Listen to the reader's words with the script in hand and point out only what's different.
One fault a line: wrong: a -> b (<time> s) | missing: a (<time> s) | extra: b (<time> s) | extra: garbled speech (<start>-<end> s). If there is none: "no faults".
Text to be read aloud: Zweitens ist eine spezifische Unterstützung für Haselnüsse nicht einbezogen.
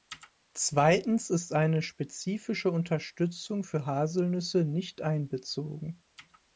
no faults